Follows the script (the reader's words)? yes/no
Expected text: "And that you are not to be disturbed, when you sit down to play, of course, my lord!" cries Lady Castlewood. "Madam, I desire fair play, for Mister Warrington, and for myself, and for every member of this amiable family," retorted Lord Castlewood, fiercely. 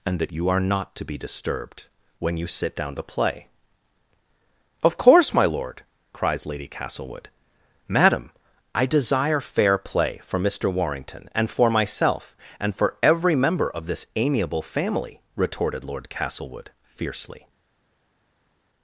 yes